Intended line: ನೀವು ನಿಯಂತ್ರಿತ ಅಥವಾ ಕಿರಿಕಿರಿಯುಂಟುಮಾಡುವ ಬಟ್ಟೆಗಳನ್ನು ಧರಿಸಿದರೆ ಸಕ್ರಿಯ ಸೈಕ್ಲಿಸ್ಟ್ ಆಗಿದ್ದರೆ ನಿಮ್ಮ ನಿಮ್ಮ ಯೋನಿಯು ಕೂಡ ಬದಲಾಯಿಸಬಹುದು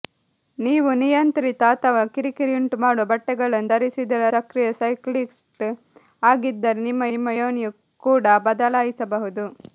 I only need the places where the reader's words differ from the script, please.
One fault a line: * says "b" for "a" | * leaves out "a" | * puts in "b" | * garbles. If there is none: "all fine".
all fine